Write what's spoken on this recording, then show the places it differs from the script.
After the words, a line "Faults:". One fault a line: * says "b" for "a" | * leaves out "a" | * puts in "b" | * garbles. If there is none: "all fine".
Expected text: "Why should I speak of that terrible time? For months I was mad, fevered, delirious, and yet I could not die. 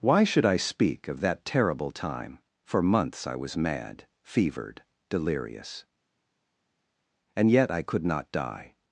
"Why should I speak of that terrible time? For months I was mad, fevered, delirious, and yet I could not die.
Faults:
all fine